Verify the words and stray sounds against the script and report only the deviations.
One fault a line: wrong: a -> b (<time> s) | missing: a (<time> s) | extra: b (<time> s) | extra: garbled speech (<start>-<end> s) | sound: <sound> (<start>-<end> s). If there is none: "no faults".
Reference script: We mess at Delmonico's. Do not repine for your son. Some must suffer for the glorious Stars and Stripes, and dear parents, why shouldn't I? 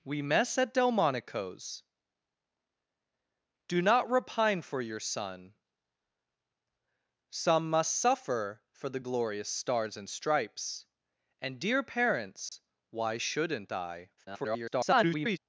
sound: dropout (12.5-12.5 s)
extra: garbled speech (14.2-15.4 s)